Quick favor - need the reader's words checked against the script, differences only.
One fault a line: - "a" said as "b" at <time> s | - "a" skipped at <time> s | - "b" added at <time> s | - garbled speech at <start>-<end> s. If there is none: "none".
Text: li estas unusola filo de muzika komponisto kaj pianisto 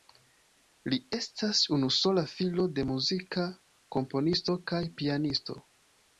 none